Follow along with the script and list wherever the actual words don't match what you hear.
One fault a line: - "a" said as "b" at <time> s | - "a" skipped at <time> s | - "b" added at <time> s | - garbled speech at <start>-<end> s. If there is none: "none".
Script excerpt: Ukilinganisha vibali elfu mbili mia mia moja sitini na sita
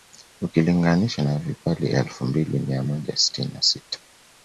- "na" added at 1.2 s
- "mia" skipped at 2.8 s